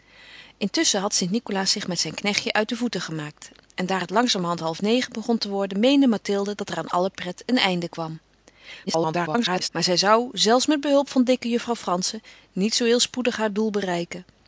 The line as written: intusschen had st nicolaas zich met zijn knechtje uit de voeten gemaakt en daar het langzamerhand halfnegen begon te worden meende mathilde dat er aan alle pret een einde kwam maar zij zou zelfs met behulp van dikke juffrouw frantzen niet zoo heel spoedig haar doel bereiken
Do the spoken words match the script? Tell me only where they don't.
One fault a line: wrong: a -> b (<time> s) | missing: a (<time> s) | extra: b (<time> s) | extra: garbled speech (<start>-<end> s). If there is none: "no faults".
extra: garbled speech (8.9-9.7 s)